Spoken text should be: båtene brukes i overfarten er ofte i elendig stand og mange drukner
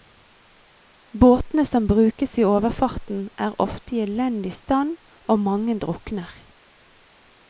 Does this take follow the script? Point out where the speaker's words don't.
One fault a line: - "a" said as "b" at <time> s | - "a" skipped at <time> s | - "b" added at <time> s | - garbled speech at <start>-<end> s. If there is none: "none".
- "som" added at 1.6 s